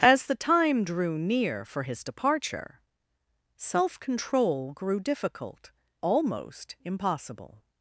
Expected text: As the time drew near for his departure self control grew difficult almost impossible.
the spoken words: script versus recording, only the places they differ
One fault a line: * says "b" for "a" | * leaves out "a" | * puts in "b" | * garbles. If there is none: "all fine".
all fine